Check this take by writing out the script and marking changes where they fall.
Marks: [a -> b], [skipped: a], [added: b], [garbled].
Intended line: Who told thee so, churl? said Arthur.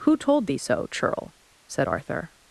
Who told thee so, churl? said Arthur.